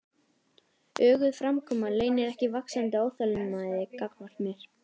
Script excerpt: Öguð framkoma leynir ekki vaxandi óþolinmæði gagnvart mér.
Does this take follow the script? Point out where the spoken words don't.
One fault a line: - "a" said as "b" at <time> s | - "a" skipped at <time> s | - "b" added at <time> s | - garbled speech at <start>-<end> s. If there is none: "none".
none